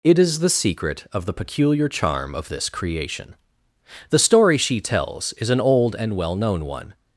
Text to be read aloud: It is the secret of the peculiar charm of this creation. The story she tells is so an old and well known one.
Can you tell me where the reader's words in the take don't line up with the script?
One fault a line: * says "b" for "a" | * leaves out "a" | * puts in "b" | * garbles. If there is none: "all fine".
* leaves out "so"